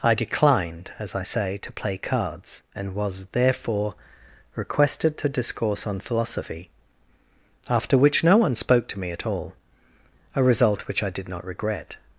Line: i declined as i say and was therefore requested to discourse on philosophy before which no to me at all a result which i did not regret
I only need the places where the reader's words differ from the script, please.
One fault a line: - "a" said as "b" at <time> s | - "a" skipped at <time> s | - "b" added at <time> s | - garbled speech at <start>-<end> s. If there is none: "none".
- "to play cards" added at 1.6 s
- "before" said as "after" at 7.7 s
- "one spoke" added at 8.4 s